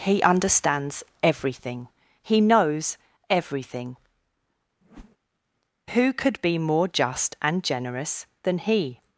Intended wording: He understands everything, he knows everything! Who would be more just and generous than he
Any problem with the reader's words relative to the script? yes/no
yes